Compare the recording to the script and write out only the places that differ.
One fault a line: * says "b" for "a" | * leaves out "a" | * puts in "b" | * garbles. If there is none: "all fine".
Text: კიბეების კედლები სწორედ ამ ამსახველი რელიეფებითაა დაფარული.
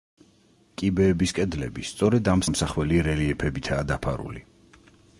all fine